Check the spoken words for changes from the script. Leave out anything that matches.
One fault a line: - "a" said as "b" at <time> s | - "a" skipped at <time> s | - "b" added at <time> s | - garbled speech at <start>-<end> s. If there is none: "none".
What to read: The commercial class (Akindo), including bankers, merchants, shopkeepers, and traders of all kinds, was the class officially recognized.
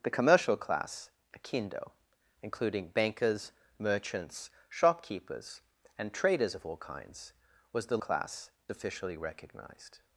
none